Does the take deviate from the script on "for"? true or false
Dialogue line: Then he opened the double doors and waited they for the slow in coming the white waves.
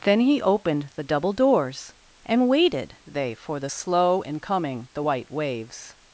false